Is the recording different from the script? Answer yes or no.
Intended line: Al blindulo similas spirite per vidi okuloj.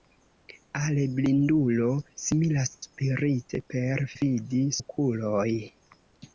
no